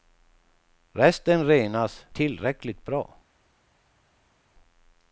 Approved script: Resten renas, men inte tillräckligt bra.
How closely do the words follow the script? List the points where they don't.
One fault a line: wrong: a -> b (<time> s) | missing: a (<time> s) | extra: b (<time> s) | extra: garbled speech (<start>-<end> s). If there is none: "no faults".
missing: men inte (2.0 s)